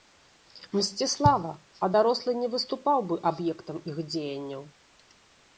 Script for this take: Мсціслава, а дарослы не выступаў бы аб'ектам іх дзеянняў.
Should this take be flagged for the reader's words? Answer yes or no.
no